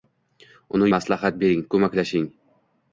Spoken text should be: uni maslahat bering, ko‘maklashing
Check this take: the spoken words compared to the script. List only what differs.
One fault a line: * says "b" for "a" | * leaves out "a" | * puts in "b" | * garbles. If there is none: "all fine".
all fine